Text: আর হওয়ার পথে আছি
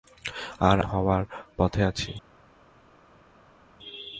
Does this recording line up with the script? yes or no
yes